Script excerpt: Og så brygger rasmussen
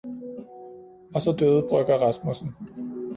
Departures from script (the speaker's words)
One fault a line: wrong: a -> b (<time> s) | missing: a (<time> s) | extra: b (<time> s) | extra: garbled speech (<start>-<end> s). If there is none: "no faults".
extra: døde (1.4 s)